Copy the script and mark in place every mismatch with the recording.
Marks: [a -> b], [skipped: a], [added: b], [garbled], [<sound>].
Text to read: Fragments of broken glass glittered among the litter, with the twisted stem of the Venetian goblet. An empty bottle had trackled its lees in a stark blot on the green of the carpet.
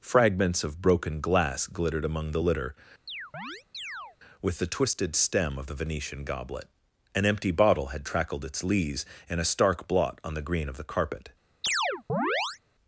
Fragments of broken glass glittered among the litter, [chirp] with the twisted stem of the Venetian goblet. An empty bottle had trackled its lees in a stark blot on the green of the carpet. [chirp]